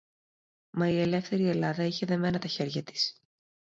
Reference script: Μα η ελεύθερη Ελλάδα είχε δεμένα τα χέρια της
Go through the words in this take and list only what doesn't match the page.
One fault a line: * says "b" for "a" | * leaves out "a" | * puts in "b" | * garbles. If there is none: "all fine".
all fine